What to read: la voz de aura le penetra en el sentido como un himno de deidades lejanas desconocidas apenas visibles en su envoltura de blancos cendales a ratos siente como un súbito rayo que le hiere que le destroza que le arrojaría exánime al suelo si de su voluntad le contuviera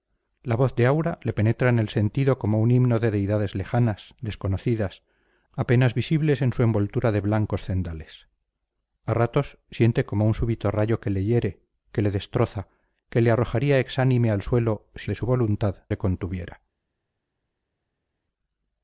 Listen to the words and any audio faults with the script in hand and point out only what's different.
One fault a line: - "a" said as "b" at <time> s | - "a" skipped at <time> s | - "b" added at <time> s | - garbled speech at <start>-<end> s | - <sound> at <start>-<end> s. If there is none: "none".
none